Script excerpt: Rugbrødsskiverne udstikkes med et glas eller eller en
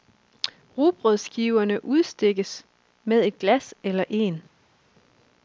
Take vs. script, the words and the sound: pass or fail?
fail